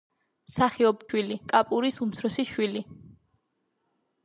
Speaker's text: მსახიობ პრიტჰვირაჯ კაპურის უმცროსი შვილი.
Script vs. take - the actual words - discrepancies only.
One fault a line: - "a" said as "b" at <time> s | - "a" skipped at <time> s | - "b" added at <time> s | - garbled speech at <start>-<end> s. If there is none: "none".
- "პრიტჰვირაჯ" said as "შვილი" at 1.1 s